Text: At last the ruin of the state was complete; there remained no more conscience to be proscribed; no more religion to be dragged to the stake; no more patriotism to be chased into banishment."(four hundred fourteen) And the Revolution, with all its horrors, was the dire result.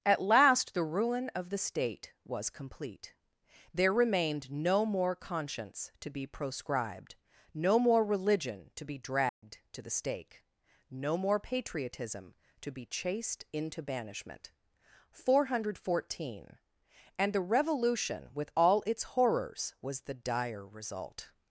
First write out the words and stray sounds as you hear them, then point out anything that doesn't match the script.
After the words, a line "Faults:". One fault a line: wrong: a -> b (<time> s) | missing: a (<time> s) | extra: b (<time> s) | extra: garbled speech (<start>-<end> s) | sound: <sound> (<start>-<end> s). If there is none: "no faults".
At last the ruin of the state was complete; there remained no more conscience to be proscribed; no more religion to be dragged to the stake; no more patriotism to be chased into banishment."(four hundred fourteen) And the Revolution, with all its horrors, was the dire result.
Faults:
sound: dropout (9.3-9.4 s)